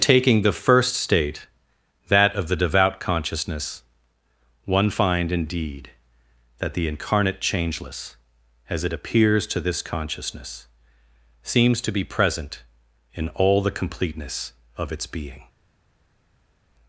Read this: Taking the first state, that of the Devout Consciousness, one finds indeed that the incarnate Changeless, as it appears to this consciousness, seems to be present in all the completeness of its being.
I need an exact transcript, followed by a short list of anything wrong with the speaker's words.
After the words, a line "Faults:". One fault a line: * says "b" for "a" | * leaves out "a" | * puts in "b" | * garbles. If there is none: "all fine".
Taking the first state, that of the Devout Consciousness, one find indeed that the incarnate Changeless, as it appears to this consciousness, seems to be present in all the completeness of its being.
Faults:
* says "find" for "finds"